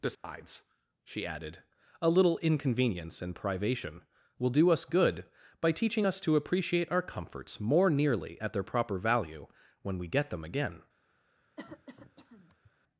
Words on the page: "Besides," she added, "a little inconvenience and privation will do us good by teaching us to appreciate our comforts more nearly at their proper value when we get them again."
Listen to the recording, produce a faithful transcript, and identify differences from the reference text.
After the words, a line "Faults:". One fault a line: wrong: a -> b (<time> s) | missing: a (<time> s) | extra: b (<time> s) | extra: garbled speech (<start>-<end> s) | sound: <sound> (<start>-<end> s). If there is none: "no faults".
"Besides," she added, "a little inconvenience and privation will do us good by teaching us to appreciate our comforts more nearly at their proper value when we get them again."
Faults:
sound: dropout (0.1-0.2 s)
sound: cough (11.6-12.7 s)